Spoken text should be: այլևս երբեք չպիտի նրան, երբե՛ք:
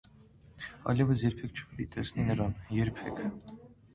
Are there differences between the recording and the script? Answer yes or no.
yes